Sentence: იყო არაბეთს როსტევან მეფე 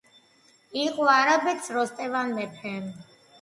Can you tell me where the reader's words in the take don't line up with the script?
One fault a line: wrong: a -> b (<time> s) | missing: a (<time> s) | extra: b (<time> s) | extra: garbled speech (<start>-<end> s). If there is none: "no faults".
no faults